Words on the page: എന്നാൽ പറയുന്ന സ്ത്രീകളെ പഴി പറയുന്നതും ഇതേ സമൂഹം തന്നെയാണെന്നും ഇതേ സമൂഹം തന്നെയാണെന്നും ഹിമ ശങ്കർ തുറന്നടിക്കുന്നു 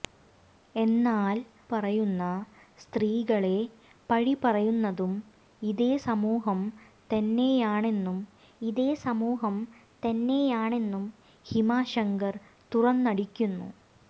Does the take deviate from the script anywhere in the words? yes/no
no